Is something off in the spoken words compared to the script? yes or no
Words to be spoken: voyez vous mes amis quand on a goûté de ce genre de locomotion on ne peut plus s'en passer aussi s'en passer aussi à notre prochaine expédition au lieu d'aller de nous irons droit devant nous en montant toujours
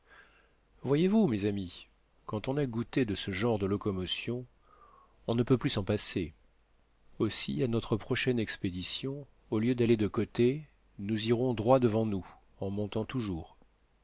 yes